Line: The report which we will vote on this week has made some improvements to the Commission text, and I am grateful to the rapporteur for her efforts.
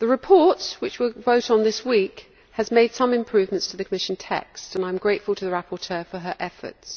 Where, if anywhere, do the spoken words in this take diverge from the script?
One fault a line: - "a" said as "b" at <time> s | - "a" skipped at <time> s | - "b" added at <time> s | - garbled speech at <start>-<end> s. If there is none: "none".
none